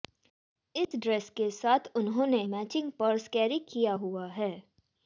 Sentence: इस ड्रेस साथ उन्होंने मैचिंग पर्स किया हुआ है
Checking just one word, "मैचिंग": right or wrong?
right